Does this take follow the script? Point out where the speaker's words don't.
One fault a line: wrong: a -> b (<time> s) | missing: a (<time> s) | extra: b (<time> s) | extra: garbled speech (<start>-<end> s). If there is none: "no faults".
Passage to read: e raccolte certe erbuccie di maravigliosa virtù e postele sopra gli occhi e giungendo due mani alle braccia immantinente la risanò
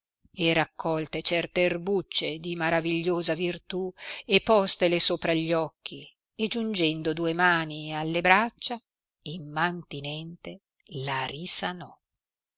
no faults